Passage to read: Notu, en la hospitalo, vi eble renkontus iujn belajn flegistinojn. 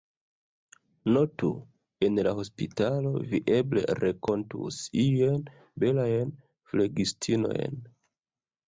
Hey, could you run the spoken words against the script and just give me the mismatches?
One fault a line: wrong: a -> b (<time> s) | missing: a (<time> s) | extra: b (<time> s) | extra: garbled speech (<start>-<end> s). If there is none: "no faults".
no faults